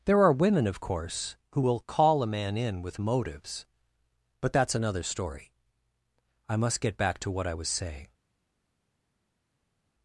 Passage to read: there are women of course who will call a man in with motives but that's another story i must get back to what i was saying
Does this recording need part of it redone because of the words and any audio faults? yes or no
no